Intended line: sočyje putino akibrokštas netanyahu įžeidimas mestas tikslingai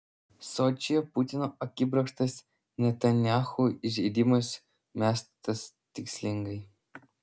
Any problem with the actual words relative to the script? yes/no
no